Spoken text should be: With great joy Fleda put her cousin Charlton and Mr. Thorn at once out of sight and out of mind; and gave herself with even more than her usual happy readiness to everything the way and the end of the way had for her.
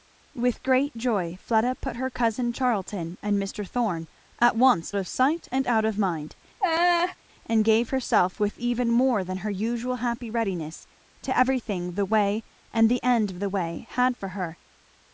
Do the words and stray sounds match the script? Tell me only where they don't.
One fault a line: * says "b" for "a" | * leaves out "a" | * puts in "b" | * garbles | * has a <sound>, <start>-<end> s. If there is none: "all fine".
* leaves out "out"
* has a laugh, 6.6-7.2 s